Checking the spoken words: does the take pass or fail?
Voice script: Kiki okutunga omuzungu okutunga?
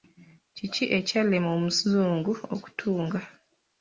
fail